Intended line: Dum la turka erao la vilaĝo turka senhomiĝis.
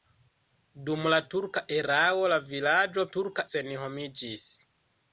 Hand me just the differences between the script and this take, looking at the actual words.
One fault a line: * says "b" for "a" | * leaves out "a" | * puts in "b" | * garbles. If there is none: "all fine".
all fine